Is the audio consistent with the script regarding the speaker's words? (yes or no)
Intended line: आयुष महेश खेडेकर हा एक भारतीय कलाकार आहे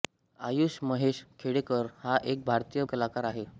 yes